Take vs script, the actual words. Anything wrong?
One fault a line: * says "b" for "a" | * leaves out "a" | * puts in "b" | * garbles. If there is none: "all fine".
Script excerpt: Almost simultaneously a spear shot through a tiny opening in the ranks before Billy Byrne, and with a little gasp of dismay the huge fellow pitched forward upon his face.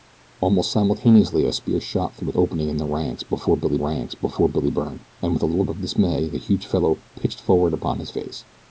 * leaves out "tiny"
* puts in "ranks before Billy"
* leaves out "gasp"